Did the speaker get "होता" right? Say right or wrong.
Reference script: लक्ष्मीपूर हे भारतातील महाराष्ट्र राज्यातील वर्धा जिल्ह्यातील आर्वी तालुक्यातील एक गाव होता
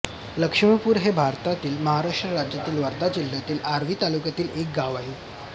wrong